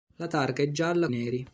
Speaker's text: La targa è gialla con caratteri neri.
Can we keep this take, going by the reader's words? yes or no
no